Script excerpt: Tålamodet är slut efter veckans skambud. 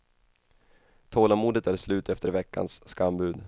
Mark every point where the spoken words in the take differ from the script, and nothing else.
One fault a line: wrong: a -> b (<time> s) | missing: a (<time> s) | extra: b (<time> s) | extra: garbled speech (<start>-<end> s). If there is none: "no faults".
no faults